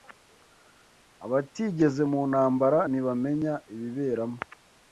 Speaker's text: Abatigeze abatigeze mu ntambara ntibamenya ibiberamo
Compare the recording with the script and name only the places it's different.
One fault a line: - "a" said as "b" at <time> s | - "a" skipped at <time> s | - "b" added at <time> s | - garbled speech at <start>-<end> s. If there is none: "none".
- "abatigeze" skipped at 2.0 s